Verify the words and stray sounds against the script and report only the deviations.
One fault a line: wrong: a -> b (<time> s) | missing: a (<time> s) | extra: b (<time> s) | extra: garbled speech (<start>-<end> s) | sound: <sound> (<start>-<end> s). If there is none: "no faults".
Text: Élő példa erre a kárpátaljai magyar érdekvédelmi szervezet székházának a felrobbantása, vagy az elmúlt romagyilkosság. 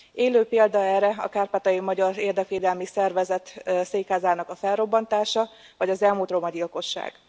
no faults